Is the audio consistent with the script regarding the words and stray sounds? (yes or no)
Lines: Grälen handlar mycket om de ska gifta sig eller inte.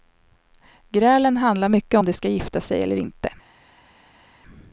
yes